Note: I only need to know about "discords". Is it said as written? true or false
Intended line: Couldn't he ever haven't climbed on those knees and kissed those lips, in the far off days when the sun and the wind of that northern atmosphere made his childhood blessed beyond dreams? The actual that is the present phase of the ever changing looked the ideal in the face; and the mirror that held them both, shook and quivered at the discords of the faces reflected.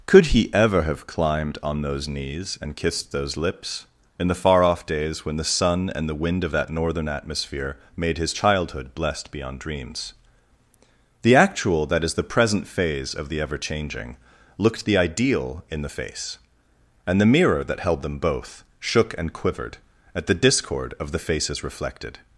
false